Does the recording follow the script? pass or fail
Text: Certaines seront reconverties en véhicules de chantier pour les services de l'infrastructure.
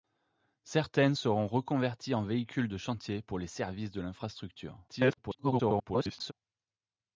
fail